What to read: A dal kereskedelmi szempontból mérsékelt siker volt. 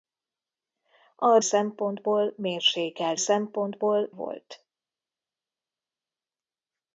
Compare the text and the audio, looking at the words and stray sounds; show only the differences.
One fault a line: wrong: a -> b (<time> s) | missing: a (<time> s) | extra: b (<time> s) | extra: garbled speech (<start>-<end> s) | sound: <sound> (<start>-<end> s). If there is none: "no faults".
missing: dal kereskedelmi (1.4 s)
wrong: siker -> szempontból (3.2 s)